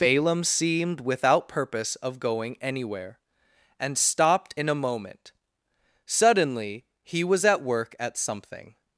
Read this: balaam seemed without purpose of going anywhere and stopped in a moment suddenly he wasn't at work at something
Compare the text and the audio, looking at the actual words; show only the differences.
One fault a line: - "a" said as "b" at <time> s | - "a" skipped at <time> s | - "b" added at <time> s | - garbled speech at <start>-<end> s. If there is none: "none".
- "wasn't" said as "was" at 7.2 s